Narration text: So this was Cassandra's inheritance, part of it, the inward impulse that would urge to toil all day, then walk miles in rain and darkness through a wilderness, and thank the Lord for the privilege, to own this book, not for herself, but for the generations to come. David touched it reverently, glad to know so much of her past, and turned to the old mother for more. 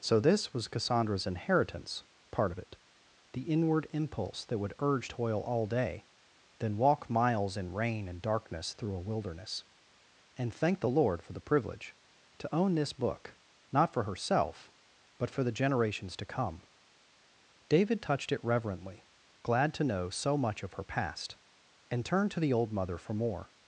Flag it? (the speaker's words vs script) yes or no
yes